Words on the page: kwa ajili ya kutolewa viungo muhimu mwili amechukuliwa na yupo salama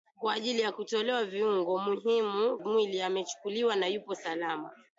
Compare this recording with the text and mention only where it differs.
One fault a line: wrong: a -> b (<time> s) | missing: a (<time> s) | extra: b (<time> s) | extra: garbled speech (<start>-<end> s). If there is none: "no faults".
no faults